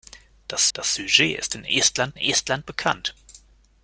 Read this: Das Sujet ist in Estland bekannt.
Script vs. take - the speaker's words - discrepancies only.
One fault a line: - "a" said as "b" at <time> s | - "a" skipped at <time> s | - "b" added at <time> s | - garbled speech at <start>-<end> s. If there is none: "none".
- "das" added at 0.7 s
- "Estland" added at 2.2 s